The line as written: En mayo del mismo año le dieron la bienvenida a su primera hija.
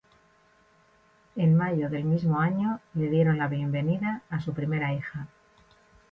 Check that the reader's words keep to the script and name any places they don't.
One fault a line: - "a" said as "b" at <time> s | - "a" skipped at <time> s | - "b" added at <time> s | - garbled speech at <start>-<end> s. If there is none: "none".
none